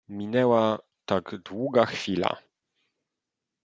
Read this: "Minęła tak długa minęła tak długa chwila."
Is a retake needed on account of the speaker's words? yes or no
yes